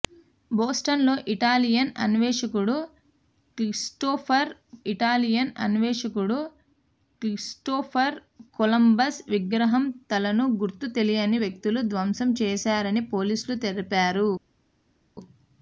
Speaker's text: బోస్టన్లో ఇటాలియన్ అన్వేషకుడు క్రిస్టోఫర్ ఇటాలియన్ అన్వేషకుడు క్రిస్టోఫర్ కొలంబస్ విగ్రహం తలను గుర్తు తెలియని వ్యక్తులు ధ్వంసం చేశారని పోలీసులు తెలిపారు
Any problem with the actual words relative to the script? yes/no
no